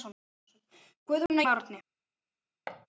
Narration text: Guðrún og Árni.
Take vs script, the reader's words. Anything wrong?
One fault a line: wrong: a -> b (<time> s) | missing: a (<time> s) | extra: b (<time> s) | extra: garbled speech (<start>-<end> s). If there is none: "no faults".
no faults